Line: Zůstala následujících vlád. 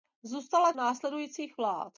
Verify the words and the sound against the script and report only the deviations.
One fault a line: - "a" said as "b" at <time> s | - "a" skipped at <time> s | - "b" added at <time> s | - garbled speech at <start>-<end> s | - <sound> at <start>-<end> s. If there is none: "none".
none